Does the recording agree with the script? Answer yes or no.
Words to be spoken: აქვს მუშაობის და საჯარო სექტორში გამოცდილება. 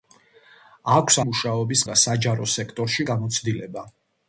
yes